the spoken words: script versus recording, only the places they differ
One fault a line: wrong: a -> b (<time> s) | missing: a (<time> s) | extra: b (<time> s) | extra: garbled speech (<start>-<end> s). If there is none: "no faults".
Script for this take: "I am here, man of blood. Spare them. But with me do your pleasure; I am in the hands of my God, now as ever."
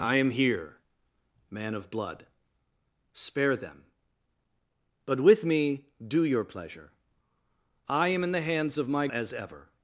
missing: God now (9.1 s)